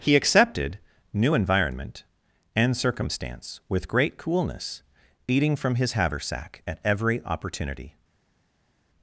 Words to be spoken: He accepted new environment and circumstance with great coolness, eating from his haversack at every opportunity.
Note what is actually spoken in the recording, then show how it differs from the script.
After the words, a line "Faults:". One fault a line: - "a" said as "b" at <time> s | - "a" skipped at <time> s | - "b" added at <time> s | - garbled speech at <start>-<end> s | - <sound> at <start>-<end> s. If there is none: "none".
He accepted new environment and circumstance with great coolness, eating from his haversack at every opportunity.
Faults:
none